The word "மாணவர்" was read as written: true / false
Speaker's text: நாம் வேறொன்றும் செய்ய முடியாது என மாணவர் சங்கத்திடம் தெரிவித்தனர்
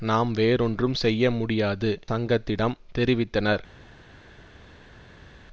false